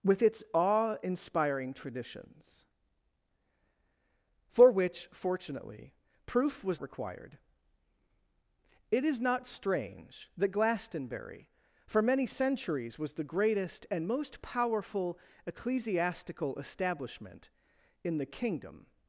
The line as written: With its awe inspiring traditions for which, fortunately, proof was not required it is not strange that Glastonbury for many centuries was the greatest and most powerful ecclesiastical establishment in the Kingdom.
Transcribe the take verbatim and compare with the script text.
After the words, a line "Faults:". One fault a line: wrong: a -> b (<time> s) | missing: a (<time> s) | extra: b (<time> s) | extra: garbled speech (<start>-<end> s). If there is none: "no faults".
With its awe inspiring traditions for which, fortunately, proof was required it is not strange that Glastonbury for many centuries was the greatest and most powerful ecclesiastical establishment in the Kingdom.
Faults:
missing: not (6.8 s)